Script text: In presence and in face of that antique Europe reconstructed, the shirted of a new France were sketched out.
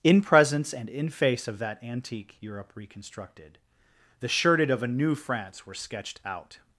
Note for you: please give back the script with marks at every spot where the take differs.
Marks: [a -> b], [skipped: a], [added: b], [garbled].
In presence and in face of that antique Europe reconstructed, the shirted of a new France were sketched out.